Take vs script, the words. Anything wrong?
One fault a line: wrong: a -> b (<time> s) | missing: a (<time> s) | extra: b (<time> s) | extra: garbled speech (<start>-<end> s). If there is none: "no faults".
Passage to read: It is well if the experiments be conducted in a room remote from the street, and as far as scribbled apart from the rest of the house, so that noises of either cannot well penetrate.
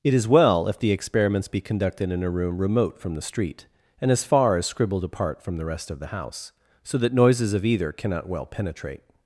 no faults